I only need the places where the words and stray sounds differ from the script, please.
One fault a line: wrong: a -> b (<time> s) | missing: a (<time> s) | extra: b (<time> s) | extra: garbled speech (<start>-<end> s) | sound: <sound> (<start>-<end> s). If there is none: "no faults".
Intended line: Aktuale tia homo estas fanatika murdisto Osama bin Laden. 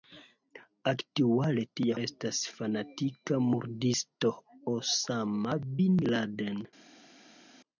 missing: homo (2.0 s)